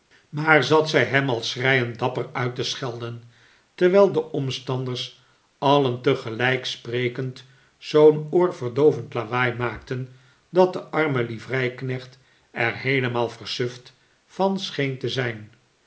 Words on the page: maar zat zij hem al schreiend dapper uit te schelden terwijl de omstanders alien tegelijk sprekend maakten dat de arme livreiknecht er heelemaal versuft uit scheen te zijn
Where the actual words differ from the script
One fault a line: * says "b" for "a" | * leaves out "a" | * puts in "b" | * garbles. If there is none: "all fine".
* puts in "zoo'n oorverdoovend lawaai"
* says "van" for "uit"